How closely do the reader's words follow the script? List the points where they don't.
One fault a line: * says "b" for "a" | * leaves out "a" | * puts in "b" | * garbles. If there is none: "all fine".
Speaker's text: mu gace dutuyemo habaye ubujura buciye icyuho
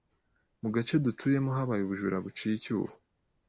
all fine